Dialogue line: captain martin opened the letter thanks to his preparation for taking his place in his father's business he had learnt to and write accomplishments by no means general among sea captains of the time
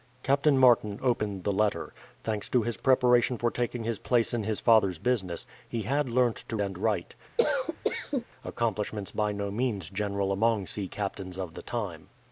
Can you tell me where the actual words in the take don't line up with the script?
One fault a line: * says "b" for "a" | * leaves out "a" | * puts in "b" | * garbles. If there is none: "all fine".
all fine